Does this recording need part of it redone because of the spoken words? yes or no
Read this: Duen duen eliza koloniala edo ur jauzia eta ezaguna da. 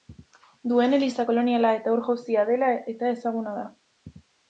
yes